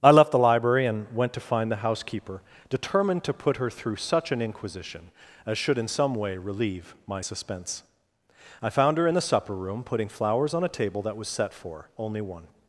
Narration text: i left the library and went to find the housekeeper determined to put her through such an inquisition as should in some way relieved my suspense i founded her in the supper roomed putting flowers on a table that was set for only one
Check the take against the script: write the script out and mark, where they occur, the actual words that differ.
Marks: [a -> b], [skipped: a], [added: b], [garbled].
i left the library and went to find the housekeeper determined to put her through such an inquisition as should in some way [relieved -> relieve] my suspense i [founded -> found] her in the supper [roomed -> room] putting flowers on a table that was set for only one